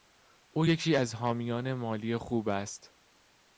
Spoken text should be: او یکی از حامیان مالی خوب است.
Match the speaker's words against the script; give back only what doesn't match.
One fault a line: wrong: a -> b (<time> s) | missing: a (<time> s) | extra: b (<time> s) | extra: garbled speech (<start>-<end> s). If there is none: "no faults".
no faults